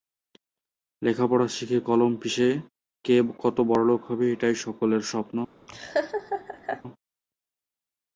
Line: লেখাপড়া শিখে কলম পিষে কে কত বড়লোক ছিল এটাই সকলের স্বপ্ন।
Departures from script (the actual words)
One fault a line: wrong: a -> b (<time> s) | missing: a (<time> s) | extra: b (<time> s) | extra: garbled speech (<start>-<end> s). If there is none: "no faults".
wrong: ছিল -> হবে (4.1 s)